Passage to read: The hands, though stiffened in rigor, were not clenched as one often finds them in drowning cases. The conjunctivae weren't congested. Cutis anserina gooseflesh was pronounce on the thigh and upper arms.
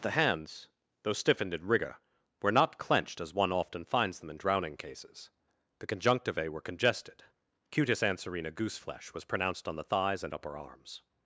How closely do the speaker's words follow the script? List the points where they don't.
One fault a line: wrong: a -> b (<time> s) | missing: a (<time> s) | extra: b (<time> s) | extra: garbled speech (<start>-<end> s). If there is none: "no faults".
wrong: weren't -> were (6.5 s)
wrong: pronounce -> pronounced (9.2 s)
wrong: thigh -> thighs (9.8 s)